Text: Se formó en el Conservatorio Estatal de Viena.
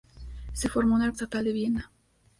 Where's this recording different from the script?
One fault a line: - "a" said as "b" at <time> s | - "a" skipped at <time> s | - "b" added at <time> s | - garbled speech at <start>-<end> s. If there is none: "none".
- "Conservatorio" skipped at 1.1 s